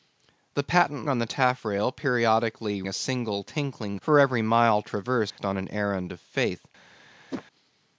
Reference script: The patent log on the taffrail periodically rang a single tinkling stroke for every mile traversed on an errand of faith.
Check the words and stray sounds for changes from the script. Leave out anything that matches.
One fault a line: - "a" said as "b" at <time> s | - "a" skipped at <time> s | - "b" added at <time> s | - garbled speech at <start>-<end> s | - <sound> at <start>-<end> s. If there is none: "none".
- "log" skipped at 1.1 s
- "rang" skipped at 2.8 s
- "stroke" skipped at 4.0 s
- dropout at 5.3-5.4 s
- whoosh at 7.3-7.4 s